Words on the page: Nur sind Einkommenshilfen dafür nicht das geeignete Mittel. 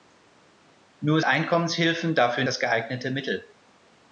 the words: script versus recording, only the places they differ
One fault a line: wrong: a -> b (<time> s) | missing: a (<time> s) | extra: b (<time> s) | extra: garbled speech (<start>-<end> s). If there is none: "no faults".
missing: sind (1.2 s)
missing: nicht (2.4 s)